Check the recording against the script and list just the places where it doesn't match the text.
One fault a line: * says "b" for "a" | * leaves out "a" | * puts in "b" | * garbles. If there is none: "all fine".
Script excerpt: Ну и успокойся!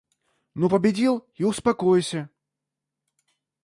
* puts in "победил"